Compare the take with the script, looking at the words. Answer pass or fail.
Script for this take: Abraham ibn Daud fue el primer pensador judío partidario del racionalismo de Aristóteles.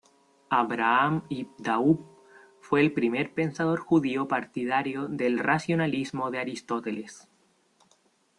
pass